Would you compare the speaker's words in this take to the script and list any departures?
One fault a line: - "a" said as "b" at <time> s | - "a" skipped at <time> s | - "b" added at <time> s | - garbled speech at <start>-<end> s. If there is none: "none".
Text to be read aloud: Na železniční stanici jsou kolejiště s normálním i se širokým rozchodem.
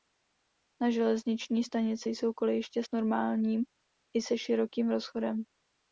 none